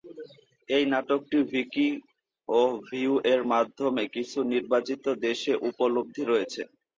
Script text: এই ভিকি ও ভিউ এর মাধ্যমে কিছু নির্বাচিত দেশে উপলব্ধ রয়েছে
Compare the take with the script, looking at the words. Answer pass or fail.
fail